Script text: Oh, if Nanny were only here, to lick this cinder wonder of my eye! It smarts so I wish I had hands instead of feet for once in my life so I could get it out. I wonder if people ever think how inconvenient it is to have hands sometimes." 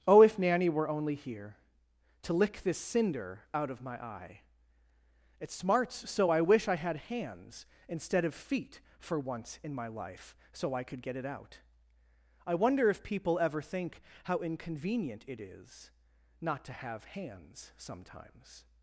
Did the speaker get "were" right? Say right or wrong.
right